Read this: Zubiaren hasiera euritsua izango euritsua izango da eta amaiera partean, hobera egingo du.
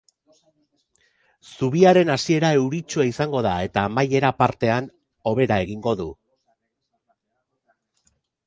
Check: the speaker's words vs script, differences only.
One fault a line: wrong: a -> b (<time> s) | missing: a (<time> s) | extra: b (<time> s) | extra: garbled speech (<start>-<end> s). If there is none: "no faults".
missing: euritsua izango (3.4 s)